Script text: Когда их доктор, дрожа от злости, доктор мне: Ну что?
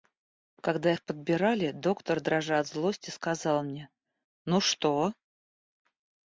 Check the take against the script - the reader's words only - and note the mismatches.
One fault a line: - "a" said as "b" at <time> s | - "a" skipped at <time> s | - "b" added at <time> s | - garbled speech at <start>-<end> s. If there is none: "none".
- "подбирали" added at 1.0 s
- "доктор" said as "сказал" at 3.1 s